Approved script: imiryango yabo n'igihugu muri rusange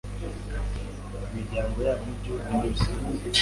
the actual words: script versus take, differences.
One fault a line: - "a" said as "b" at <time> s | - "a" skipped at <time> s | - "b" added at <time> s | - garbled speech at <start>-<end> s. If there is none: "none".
none